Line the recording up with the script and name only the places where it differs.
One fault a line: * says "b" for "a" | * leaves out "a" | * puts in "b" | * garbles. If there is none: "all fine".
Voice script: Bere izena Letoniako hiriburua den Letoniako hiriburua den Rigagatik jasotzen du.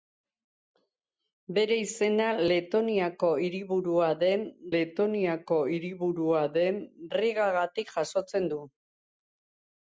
all fine